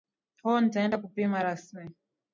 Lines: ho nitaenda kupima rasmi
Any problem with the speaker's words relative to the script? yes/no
no